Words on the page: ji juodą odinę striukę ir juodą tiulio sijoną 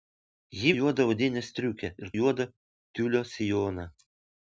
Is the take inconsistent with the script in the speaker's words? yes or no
no